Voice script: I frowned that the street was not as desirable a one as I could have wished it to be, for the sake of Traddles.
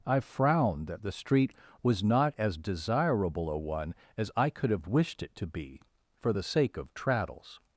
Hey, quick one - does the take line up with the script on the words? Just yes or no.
yes